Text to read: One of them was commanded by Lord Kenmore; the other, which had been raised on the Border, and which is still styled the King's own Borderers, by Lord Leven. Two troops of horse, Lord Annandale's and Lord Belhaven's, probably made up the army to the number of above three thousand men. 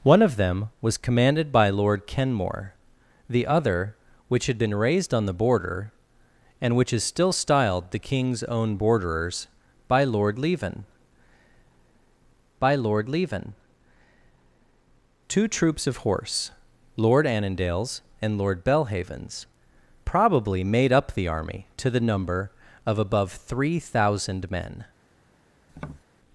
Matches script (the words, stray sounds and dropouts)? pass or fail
fail